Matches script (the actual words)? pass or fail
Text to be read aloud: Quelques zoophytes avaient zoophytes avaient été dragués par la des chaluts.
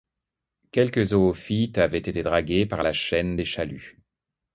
fail